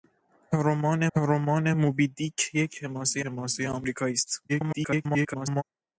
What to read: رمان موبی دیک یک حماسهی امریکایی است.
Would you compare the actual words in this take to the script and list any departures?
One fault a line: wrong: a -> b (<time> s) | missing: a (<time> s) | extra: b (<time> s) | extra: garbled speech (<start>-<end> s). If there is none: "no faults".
extra: رمان (1.2 s)
extra: حماسهی (3.2 s)
extra: garbled speech (4.5-5.6 s)